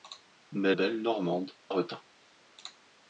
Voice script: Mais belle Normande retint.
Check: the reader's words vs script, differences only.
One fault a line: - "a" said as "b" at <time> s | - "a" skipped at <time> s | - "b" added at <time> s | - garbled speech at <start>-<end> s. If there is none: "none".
none